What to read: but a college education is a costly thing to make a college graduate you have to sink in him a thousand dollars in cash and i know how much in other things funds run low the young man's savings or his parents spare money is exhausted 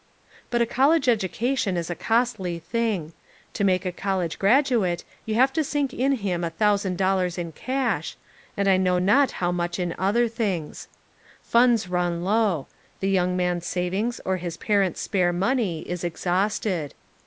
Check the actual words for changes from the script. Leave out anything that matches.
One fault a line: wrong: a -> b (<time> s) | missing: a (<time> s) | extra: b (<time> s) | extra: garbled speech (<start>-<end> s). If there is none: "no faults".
extra: not (9.0 s)